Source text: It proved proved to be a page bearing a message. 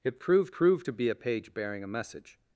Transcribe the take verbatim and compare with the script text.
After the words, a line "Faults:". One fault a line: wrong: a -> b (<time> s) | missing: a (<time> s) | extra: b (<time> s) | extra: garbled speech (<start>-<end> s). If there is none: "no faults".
It proved proved to be a page bearing a message.
Faults:
no faults